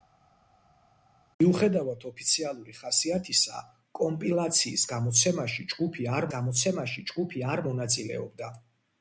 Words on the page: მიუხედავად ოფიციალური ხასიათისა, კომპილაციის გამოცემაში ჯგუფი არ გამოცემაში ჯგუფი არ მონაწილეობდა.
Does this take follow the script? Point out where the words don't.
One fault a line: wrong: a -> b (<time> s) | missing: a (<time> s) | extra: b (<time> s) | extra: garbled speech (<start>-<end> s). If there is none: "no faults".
no faults